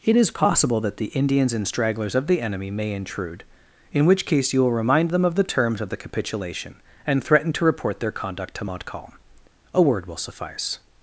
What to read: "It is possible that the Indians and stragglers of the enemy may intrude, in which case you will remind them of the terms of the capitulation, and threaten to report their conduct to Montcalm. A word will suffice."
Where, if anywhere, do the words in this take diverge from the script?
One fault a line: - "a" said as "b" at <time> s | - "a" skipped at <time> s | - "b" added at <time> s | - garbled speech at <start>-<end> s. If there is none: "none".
none